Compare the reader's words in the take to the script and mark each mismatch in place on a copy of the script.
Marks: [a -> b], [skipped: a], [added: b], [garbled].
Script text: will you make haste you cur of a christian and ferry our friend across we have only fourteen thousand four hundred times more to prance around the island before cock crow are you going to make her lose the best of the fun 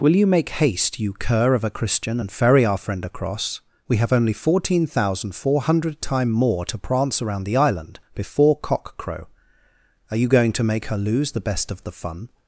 will you make haste you cur of a christian and ferry our friend across we have only fourteen thousand four hundred [times -> time] more to prance around the island before cock crow are you going to make her lose the best of the fun